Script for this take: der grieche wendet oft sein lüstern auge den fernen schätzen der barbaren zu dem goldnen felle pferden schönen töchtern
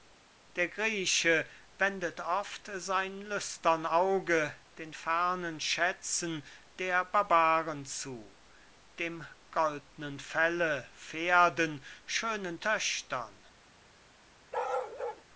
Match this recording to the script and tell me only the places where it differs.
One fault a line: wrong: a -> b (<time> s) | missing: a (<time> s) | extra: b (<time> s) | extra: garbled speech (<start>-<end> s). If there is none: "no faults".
no faults